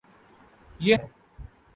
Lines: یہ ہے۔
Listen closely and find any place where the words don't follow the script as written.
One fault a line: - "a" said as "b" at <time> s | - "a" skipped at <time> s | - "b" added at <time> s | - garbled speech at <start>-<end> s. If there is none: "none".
none